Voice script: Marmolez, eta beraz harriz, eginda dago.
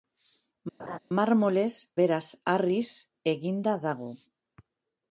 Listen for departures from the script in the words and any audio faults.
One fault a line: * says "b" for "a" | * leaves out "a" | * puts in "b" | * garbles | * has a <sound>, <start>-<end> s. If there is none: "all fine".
* has a laugh, 0.8-1.0 s
* leaves out "eta"